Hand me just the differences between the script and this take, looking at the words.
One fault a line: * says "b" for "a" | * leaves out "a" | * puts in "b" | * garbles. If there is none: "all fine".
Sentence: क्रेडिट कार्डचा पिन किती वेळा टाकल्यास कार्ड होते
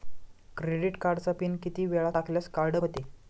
all fine